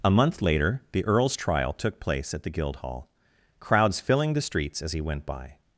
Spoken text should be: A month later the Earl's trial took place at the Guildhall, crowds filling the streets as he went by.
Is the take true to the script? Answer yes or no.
yes